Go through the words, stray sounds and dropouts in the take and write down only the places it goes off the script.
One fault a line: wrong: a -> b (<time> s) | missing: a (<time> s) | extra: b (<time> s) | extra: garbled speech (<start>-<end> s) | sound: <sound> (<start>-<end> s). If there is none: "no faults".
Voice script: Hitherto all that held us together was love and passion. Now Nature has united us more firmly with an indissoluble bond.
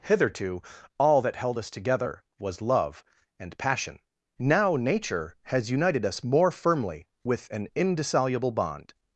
no faults